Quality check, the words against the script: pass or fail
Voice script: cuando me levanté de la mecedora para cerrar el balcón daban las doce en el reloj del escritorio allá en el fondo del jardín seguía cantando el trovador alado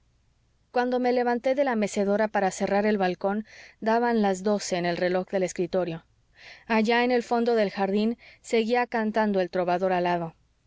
pass